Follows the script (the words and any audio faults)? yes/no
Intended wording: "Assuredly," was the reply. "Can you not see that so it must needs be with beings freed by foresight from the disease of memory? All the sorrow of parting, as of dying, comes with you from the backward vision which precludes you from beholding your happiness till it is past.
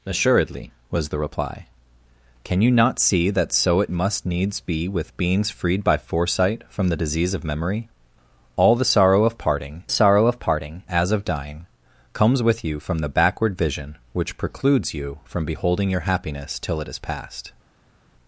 no